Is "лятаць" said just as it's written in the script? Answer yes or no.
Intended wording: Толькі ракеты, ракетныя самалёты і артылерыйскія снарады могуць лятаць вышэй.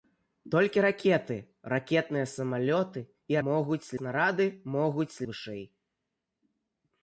no